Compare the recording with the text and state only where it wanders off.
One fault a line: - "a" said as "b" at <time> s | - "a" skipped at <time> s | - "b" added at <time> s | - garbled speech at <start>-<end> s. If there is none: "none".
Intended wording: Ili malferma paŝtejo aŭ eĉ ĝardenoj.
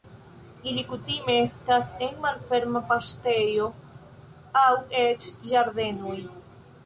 - "kutime estas en" added at 0.9 s